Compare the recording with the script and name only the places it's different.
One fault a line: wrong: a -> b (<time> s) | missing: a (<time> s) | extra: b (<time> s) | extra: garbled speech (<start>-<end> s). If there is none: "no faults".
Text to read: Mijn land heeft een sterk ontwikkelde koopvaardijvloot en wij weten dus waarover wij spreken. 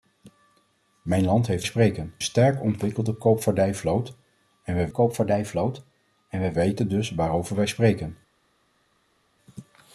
wrong: een -> spreken (1.6 s)
extra: koopvaardijvloot en wij (4.9 s)